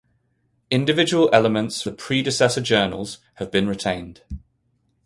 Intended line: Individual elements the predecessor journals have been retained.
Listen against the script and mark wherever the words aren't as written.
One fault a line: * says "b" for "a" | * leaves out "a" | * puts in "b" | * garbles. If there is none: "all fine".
all fine